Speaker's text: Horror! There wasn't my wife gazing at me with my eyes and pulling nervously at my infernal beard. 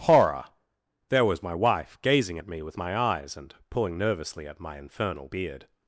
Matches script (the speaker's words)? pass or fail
fail